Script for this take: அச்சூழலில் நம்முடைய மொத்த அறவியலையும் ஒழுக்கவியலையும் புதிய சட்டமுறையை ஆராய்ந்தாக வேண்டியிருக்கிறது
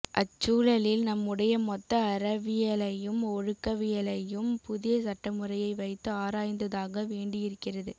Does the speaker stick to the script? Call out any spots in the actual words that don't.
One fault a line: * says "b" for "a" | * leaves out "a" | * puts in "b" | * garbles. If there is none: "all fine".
* puts in "வைத்து"